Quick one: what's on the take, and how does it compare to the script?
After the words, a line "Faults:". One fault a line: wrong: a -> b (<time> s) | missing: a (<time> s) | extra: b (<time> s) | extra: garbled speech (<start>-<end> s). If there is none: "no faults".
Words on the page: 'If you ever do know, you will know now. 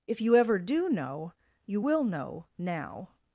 'If you ever do know, you will know now.
Faults:
no faults